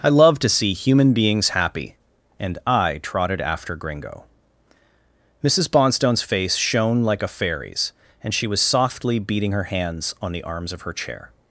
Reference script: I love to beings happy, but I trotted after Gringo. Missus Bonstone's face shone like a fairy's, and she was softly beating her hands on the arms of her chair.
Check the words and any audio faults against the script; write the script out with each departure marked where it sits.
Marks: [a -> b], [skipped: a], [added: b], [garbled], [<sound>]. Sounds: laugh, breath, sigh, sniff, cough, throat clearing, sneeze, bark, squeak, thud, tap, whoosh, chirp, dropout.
I love to [added: see human] beings happy, [but -> and] I trotted after Gringo. Missus Bonstone's face shone like a fairy's, and she was softly beating her hands on the arms of her chair.